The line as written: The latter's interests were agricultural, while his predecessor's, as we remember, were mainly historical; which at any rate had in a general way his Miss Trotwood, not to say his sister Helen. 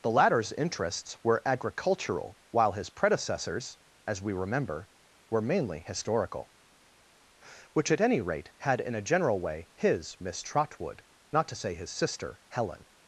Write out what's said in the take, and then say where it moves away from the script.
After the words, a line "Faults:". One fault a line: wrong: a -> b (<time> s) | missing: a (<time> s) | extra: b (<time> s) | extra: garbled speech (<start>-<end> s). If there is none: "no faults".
The latter's interests were agricultural, while his predecessor's, as we remember, were mainly historical; which at any rate had in a general way his Miss Trotwood, not to say his sister Helen.
Faults:
no faults